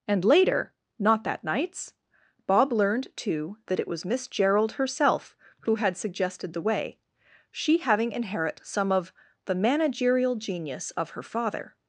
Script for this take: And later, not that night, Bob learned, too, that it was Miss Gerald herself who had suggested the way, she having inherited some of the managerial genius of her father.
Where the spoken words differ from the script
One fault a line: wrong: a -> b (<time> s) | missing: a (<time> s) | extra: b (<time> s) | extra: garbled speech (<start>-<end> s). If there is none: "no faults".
wrong: night -> nights (1.4 s)
wrong: inherited -> inherit (8.1 s)